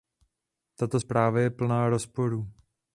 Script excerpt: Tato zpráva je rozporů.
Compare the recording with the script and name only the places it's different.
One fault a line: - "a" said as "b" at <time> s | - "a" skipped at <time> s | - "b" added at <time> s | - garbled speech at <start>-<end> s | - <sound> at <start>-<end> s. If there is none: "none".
- "plná" added at 1.5 s